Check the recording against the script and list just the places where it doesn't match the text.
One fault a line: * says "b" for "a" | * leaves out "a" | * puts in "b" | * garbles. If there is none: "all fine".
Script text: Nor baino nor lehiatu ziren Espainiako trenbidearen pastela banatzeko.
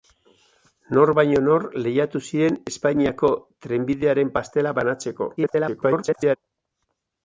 * garbles